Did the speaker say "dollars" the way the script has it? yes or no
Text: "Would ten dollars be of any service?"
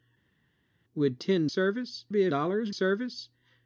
no